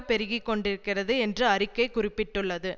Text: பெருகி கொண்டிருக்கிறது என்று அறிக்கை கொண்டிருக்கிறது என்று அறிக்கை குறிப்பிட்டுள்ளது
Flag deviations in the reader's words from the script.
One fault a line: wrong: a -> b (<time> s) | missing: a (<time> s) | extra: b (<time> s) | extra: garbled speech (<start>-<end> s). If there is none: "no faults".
missing: கொண்டிருக்கிறது என்று அறிக்கை (1.9 s)